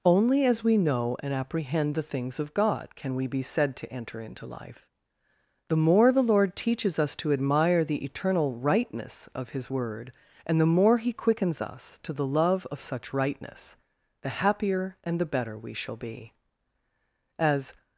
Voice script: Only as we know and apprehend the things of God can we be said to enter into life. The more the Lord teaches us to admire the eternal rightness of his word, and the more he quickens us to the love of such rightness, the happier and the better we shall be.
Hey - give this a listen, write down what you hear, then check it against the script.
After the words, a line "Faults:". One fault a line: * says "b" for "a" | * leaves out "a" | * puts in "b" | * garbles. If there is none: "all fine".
Only as we know and apprehend the things of God can we be said to enter into life. The more the Lord teaches us to admire the eternal rightness of his word, and the more he quickens us to the love of such rightness, the happier and the better we shall be. As
Faults:
* puts in "As"